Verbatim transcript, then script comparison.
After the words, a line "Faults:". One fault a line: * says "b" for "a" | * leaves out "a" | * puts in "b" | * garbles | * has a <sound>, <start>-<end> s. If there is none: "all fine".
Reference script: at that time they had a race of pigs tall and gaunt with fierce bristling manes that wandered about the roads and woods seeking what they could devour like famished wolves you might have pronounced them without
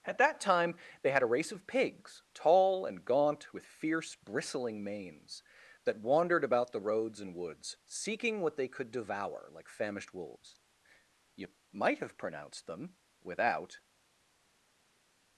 at that time they had a race of pigs tall and gaunt with fierce bristling manes that wandered about the roads and woods seeking what they could devour like famished wolves you might have pronounced them without
Faults:
all fine